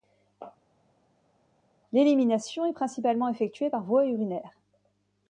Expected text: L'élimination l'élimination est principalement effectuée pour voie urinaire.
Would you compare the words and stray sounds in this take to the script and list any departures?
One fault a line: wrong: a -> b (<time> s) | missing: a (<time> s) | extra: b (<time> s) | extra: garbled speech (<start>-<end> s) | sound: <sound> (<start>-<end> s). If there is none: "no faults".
missing: l'élimination (2.7 s)
wrong: pour -> par (3.7 s)